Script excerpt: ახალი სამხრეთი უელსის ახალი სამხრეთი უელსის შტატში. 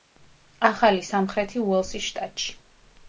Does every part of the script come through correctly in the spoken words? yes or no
no